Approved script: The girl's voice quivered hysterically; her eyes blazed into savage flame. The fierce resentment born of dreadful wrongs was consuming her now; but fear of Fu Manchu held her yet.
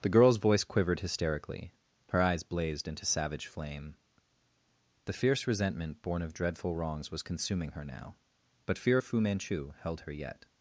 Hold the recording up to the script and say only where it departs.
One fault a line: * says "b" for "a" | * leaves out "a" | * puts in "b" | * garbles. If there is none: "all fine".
all fine